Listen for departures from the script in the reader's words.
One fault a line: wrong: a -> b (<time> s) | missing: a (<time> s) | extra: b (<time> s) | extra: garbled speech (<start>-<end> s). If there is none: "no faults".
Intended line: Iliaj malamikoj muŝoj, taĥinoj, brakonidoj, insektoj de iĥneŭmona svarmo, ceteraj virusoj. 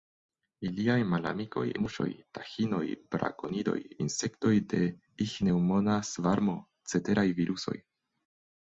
no faults